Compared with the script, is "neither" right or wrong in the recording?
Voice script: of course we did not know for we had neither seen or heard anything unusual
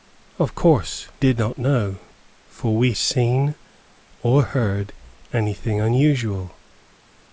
wrong